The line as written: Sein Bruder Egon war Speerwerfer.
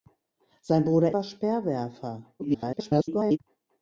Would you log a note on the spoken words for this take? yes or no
yes